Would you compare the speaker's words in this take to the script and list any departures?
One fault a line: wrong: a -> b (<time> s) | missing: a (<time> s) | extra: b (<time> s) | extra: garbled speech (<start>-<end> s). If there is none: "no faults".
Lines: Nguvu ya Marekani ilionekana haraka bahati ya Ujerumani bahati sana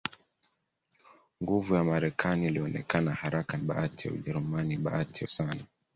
no faults